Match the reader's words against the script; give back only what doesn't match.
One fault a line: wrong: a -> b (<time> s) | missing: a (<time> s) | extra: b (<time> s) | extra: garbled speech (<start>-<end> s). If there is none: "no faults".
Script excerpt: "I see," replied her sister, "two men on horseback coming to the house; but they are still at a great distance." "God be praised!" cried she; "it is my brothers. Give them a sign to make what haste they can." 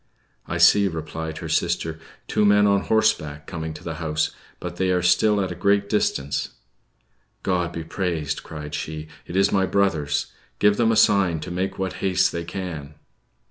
no faults